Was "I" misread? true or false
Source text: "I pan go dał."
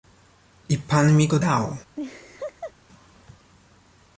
false